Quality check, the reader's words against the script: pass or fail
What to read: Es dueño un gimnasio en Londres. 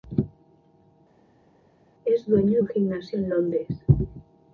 pass